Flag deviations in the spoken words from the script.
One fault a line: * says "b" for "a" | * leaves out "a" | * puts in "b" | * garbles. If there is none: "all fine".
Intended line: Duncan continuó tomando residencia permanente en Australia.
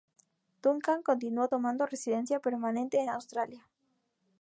all fine